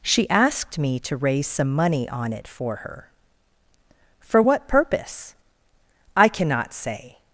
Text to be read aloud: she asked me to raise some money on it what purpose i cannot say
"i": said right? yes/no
yes